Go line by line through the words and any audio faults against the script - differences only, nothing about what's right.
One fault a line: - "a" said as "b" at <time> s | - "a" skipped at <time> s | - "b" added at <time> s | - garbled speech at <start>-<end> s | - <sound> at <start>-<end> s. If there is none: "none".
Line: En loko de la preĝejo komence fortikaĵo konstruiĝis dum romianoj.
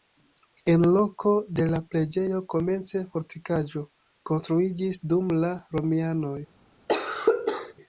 - "la" added at 5.4 s
- cough at 6.9-7.7 s